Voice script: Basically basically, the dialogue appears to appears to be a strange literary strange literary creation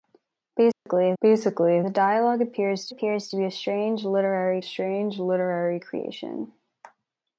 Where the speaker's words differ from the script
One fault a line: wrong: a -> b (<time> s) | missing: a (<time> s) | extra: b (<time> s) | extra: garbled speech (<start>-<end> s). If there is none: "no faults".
no faults